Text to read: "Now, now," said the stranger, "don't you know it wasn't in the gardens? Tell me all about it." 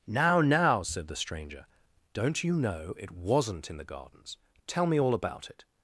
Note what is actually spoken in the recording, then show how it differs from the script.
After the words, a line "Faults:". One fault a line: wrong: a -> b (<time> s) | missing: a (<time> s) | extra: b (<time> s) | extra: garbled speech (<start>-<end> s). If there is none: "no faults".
"Now, now," said the stranger, "don't you know it wasn't in the gardens? Tell me all about it."
Faults:
no faults